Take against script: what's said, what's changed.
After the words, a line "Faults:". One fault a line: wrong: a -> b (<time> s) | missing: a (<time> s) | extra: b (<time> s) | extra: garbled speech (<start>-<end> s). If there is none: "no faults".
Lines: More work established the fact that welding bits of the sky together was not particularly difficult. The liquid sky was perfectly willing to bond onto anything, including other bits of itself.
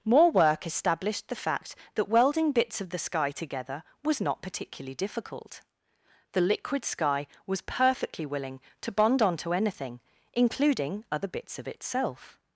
More work established the fact that welding bits of the sky together was not particularly difficult. The liquid sky was perfectly willing to bond onto anything, including other bits of itself.
Faults:
no faults